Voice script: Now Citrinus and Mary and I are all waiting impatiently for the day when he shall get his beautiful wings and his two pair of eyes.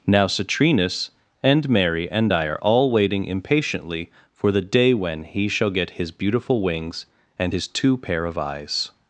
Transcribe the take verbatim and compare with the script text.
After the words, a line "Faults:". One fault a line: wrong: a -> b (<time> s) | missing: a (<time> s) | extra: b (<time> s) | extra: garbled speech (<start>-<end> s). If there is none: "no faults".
Now Citrinus and Mary and I are all waiting impatiently for the day when he shall get his beautiful wings and his two pair of eyes.
Faults:
no faults